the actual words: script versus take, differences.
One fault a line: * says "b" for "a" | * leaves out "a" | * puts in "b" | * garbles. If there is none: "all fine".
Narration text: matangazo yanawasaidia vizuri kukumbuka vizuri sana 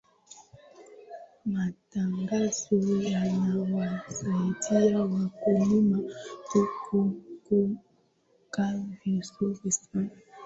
* says "wakulima" for "vizuri"